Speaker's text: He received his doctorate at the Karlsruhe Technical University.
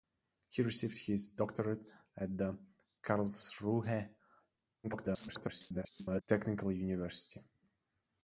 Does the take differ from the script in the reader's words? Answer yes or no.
yes